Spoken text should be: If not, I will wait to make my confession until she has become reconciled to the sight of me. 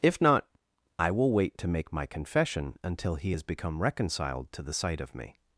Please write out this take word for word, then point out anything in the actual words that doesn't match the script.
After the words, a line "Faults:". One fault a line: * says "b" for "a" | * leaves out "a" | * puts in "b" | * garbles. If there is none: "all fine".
If not, I will wait to make my confession until he has become reconciled to the sight of me.
Faults:
* says "he" for "she"